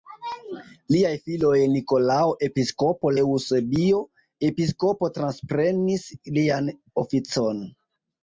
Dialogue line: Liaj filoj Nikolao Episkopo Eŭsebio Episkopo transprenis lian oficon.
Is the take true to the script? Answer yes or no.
yes